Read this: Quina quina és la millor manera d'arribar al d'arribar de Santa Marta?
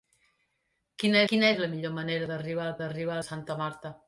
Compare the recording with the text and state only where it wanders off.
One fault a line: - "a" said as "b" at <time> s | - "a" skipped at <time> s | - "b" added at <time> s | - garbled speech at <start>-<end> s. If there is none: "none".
none